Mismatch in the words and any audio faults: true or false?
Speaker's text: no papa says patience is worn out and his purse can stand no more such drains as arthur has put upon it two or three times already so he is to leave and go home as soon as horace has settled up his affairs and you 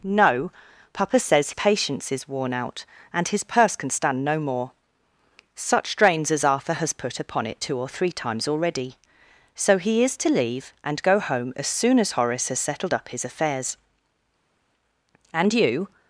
false